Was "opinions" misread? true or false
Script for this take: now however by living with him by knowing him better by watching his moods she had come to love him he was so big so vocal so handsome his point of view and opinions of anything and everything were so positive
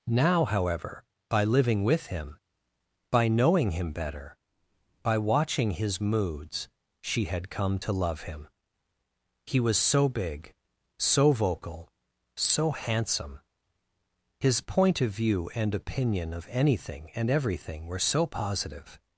true